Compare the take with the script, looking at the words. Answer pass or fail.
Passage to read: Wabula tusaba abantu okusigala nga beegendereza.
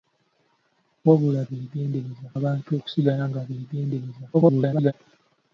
fail